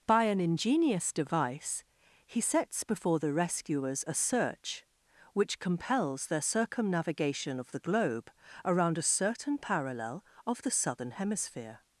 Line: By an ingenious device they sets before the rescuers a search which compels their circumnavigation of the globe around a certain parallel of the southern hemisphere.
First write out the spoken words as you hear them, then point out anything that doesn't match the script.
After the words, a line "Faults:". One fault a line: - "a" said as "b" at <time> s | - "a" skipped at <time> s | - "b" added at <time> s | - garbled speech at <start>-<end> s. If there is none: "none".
By an ingenious device he sets before the rescuers a search which compels their circumnavigation of the globe around a certain parallel of the southern hemisphere.
Faults:
- "they" said as "he" at 2.2 s